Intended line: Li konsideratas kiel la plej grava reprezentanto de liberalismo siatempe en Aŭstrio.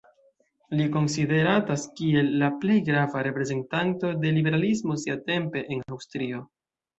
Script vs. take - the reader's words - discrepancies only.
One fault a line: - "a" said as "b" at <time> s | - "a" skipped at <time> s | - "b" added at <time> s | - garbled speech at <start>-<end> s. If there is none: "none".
none